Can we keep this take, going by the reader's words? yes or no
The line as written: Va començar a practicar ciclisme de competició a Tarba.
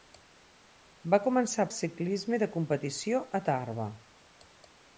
no